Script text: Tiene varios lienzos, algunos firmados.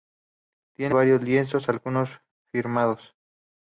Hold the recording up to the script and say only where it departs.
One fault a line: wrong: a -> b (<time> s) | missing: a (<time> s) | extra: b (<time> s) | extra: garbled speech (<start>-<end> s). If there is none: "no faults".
no faults